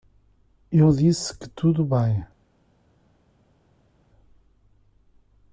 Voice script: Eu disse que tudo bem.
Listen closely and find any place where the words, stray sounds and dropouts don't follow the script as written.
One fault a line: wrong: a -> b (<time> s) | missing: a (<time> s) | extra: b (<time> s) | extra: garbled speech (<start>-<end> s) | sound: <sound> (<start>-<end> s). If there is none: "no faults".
no faults